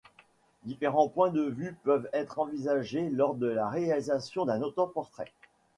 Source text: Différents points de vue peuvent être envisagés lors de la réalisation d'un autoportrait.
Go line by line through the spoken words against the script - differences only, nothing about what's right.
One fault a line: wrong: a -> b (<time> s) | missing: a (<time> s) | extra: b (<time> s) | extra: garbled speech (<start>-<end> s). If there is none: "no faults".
no faults